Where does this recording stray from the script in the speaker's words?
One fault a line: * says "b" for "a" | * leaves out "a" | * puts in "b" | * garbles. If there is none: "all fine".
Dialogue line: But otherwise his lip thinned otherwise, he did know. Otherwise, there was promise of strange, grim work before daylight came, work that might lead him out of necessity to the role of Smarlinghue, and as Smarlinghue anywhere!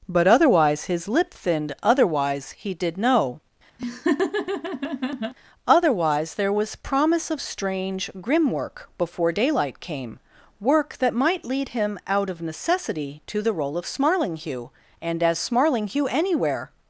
all fine